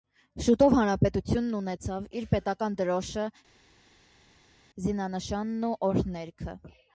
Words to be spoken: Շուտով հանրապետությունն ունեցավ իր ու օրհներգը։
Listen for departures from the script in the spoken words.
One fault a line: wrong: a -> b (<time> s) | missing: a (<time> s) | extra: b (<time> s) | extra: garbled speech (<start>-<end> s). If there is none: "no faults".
extra: պետական դրոշը զինանշանն (2.3 s)